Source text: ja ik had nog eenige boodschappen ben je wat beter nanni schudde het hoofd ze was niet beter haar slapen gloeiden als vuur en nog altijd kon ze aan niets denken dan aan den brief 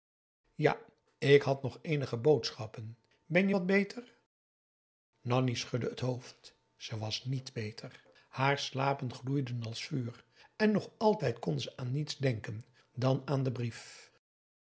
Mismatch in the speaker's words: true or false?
false